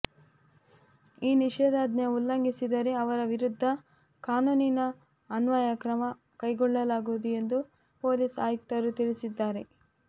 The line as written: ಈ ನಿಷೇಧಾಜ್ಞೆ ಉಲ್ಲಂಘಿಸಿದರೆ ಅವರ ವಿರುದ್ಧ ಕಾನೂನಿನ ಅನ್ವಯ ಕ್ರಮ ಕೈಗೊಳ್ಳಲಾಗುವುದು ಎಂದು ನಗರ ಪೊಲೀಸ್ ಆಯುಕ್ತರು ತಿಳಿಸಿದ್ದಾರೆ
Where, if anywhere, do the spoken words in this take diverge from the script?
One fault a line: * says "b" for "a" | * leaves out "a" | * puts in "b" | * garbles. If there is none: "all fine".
* leaves out "ನಗರ"